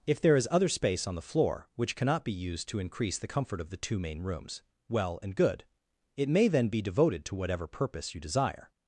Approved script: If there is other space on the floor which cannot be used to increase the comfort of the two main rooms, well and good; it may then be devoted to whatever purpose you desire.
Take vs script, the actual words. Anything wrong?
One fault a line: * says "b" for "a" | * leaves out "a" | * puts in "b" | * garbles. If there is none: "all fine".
all fine